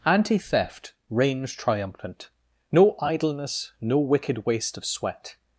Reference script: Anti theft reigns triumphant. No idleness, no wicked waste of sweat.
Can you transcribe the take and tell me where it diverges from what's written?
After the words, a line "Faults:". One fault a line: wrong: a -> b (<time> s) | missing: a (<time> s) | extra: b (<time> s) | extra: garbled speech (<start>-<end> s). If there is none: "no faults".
Anti theft reigns triumphant. No idleness, no wicked waste of sweat.
Faults:
no faults